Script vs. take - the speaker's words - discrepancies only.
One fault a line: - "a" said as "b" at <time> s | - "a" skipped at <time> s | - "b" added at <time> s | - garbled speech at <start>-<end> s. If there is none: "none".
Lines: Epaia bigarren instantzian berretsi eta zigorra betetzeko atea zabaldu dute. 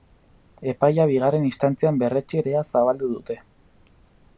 - "eta zigorra betetzeko" skipped at 2.4 s